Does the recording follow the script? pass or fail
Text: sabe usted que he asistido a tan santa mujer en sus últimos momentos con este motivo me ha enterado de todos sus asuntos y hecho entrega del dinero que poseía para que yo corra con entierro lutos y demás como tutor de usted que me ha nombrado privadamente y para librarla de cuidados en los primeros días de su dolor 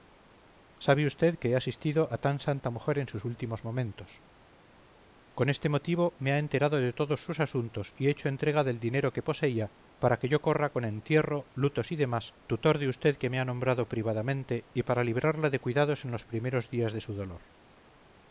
fail